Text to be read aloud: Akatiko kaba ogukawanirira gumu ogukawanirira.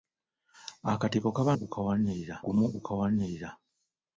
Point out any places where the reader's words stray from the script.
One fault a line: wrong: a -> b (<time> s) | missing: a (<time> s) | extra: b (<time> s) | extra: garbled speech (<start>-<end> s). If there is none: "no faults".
no faults